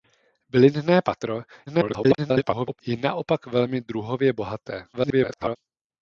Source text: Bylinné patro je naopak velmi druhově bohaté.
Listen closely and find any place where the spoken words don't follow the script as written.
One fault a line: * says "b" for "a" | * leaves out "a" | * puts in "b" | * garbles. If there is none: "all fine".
* garbles
* garbles